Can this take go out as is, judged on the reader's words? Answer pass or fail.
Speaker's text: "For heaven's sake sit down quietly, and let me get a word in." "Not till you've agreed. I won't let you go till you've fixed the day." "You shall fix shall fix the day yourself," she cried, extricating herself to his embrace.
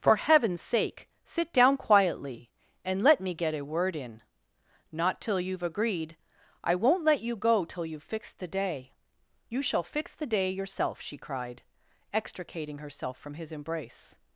fail